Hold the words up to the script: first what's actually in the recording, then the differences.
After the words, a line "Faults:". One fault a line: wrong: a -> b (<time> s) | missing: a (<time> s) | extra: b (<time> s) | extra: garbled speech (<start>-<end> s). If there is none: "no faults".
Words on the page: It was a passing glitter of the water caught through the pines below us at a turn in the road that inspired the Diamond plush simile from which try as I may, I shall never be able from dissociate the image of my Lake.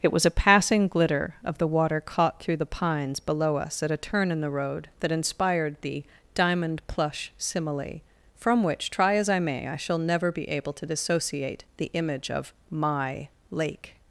It was a passing glitter of the water caught through the pines below us at a turn in the road that inspired the Diamond plush simile from which try as I may, I shall never be able to dissociate the image of my Lake.
Faults:
wrong: from -> to (10.7 s)